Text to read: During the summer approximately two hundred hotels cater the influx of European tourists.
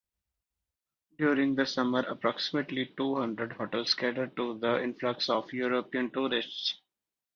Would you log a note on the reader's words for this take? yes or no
yes